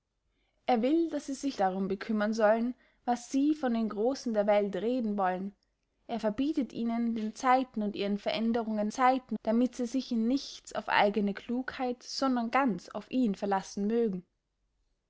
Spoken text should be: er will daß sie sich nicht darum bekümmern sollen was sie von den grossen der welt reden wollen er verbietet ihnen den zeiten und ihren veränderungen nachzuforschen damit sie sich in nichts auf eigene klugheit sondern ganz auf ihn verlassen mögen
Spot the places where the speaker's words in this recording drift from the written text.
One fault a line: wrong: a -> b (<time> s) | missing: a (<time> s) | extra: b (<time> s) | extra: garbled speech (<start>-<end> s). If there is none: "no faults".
missing: nicht (1.6 s)
wrong: nachzuforschen -> zeiten (8.9 s)